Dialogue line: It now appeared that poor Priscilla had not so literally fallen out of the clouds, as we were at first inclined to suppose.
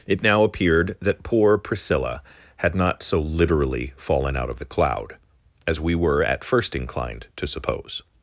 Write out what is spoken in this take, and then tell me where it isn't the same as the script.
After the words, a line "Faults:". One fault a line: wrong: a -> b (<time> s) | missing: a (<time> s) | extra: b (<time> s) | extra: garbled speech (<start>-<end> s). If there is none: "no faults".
It now appeared that poor Priscilla had not so literally fallen out of the cloud, as we were at first inclined to suppose.
Faults:
wrong: clouds -> cloud (4.7 s)